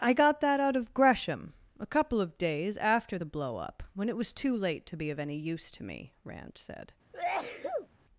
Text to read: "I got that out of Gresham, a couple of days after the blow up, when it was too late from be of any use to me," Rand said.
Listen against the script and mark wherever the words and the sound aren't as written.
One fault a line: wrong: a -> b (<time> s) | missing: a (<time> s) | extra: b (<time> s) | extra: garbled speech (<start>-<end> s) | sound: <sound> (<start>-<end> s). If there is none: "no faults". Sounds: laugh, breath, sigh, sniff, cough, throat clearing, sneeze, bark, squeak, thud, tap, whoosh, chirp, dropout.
wrong: from -> to (4.9 s)
sound: sneeze (7.1-7.9 s)